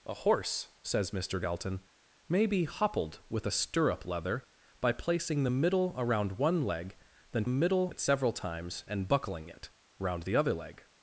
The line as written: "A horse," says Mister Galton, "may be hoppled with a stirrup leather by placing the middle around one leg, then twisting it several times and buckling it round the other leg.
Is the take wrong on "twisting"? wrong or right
wrong